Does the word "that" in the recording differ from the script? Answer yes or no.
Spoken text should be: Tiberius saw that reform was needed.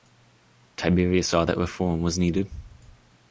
no